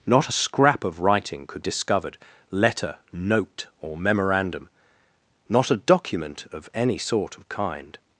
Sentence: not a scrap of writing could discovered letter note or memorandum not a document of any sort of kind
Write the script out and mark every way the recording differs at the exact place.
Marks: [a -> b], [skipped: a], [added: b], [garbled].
not a scrap of writing could discovered letter note or memorandum not a document of any sort of kind